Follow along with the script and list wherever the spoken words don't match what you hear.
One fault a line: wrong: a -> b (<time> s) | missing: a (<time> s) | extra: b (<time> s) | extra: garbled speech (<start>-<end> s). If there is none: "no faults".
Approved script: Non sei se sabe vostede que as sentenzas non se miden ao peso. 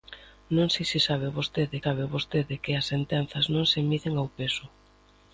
extra: sabe vostede (1.8 s)